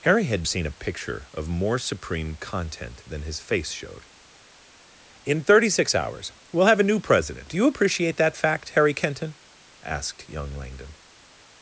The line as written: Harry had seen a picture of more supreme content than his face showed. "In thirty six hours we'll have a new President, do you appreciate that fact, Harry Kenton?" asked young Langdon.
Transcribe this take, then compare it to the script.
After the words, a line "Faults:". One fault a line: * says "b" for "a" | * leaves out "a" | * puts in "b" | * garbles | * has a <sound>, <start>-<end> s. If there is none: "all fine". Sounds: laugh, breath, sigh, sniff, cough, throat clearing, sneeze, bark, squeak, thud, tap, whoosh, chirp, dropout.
Harry had seen a picture of more supreme content than his face showed. "In thirty six hours we'll have a new President, do you appreciate that fact, Harry Kenton?" asked young Langdon.
Faults:
all fine